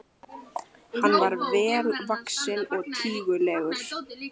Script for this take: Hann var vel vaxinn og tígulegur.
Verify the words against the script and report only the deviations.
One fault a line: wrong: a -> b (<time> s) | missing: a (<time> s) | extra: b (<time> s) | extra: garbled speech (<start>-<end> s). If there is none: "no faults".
no faults